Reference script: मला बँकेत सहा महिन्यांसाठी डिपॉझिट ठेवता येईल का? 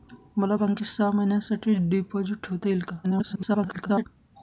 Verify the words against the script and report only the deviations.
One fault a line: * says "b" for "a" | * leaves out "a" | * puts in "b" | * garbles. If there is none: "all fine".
* garbles